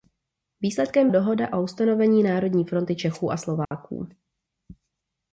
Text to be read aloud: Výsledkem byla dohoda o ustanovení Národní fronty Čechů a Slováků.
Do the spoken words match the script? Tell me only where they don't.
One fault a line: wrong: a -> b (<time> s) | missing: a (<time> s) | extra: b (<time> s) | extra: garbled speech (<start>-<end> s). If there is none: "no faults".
missing: byla (1.1 s)